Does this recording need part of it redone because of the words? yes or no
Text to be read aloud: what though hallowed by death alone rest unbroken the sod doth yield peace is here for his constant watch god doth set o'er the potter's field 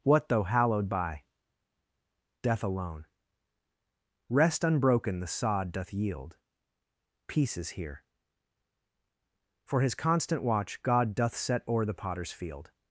no